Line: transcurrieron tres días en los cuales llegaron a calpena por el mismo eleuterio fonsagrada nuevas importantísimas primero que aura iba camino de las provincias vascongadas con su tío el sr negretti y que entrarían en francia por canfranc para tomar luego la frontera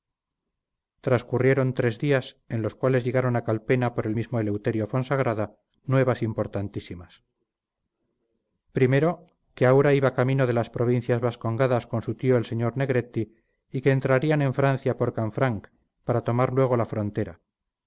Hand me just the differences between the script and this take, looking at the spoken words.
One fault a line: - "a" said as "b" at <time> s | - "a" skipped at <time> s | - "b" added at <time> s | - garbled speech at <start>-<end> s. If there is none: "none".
none